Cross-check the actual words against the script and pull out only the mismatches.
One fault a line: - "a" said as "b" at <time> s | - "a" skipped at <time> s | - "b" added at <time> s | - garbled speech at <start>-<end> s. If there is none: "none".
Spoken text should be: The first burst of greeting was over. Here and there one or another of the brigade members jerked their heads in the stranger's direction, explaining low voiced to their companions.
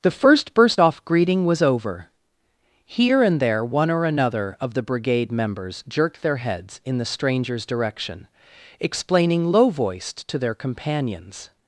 - "of" said as "off" at 0.8 s